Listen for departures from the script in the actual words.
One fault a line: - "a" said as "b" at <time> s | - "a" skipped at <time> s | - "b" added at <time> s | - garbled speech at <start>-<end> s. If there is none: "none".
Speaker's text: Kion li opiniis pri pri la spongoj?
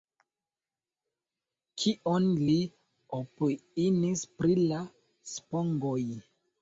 - "pri" skipped at 4.6 s